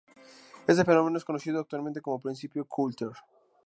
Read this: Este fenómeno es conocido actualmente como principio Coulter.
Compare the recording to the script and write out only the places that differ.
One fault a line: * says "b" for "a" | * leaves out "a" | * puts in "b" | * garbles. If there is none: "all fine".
all fine